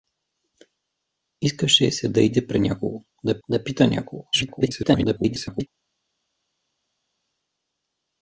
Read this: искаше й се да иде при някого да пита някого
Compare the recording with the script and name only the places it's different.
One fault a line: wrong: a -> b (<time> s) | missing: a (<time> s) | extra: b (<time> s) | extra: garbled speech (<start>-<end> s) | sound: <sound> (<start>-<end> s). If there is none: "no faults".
extra: да (3.5 s)
extra: garbled speech (4.3-5.7 s)